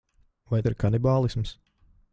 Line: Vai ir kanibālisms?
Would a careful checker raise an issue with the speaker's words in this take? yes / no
no